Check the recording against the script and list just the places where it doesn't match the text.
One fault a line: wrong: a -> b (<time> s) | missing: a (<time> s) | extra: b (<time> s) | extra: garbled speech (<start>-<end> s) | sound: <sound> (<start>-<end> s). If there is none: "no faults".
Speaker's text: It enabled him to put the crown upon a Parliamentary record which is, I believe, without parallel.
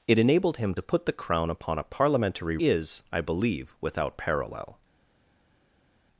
missing: record which (2.6 s)